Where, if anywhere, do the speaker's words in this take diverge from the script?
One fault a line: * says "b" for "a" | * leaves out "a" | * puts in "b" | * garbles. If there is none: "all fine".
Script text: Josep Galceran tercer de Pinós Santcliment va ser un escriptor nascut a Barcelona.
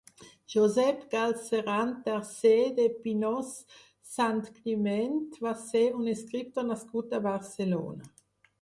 all fine